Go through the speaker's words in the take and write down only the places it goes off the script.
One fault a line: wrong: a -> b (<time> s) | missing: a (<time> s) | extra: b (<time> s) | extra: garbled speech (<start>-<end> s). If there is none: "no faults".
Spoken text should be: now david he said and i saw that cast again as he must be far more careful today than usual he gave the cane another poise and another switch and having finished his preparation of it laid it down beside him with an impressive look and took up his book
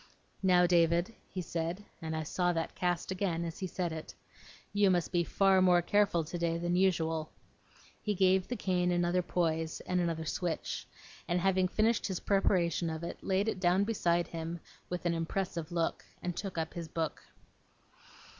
extra: said it you (3.7 s)